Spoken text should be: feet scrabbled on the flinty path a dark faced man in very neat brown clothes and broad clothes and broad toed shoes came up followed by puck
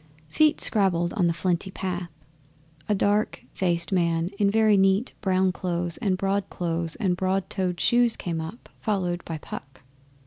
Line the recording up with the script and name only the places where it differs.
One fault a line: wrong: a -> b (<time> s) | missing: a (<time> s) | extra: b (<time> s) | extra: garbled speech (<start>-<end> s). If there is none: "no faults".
no faults